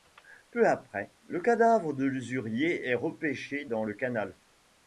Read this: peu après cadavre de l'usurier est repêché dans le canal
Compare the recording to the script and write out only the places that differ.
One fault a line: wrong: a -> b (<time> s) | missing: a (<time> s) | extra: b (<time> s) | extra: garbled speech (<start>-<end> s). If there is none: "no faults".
extra: le (1.3 s)